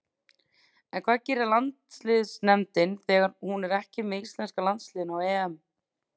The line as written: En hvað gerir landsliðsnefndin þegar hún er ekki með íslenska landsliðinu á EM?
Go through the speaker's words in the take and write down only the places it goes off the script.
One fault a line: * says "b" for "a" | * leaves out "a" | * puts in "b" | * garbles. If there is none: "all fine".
all fine